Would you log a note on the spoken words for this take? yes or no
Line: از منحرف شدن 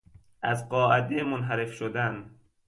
yes